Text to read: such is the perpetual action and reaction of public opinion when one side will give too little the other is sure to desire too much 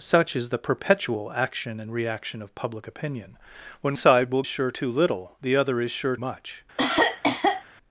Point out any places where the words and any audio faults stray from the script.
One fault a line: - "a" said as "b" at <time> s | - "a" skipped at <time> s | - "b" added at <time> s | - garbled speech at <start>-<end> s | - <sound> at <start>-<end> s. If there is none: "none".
- "one" skipped at 4.0 s
- "give" said as "sure" at 4.5 s
- "to desire too" skipped at 6.2 s
- cough at 6.8-7.6 s